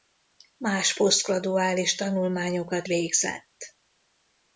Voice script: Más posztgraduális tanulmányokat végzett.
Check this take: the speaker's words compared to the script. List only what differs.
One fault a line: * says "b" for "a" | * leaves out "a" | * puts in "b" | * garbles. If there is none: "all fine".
all fine